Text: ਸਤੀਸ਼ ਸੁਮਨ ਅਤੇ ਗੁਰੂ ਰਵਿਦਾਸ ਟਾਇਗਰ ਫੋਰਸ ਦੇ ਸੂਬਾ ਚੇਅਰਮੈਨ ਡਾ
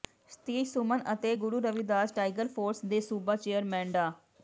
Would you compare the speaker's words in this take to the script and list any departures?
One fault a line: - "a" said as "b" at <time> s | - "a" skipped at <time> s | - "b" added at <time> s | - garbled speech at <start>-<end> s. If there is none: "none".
none